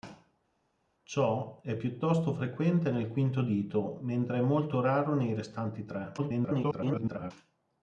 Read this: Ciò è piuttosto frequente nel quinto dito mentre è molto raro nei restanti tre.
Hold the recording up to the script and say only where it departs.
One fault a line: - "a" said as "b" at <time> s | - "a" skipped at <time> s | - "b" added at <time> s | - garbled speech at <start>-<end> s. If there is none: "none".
- garbled speech at 6.2-7.3 s